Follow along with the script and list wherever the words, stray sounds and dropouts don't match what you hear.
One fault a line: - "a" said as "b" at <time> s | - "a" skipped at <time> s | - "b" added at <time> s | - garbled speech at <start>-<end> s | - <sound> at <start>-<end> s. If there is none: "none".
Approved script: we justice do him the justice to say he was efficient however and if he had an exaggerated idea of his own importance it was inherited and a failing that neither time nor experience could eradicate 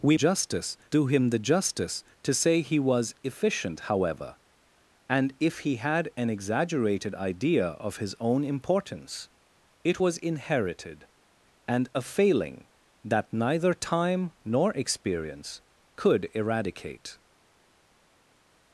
none